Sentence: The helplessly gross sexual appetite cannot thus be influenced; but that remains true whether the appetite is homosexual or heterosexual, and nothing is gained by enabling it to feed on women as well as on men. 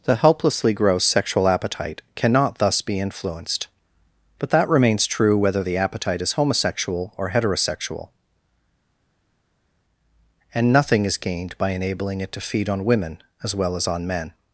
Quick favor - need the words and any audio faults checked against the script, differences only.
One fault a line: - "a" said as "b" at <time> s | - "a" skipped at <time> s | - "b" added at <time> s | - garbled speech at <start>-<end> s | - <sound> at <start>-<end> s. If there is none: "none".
none